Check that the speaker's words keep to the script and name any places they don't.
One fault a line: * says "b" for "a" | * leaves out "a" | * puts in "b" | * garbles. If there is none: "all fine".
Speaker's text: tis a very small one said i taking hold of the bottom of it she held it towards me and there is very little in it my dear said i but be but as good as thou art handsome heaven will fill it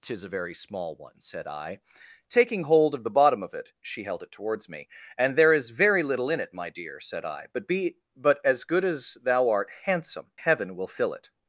all fine